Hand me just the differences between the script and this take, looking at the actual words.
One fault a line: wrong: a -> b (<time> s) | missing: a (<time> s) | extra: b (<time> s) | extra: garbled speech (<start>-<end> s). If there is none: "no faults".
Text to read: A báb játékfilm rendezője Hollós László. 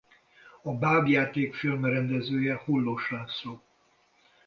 no faults